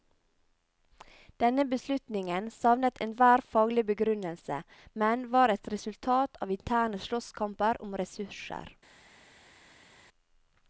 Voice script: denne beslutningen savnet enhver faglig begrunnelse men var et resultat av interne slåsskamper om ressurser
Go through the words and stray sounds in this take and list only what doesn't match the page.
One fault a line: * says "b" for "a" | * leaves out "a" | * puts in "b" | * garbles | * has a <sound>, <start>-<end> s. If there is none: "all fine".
all fine